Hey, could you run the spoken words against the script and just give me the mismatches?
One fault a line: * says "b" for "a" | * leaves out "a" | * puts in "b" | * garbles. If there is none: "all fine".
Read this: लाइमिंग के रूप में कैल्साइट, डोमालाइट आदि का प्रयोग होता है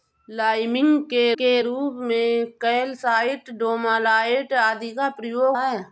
* puts in "के"
* leaves out "होता"